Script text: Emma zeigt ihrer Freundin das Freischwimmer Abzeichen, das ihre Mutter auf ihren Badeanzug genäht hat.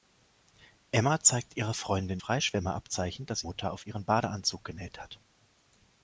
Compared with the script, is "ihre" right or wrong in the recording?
wrong